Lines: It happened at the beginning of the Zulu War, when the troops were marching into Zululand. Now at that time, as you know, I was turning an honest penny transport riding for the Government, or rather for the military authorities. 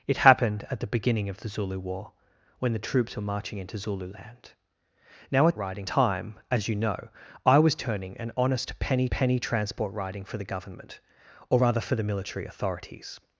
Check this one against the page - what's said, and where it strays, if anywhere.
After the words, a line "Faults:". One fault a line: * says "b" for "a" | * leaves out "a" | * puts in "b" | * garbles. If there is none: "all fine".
It happened at the beginning of the Zulu War, when the troops were marching into Zululand. Now at riding time, as you know, I was turning an honest penny penny transport riding for the Government, or rather for the military authorities.
Faults:
* says "riding" for "that"
* puts in "penny"